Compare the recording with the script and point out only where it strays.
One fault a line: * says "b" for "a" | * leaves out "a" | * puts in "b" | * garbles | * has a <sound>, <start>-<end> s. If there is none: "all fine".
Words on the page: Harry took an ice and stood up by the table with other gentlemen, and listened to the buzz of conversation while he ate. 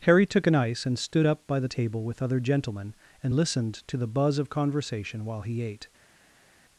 all fine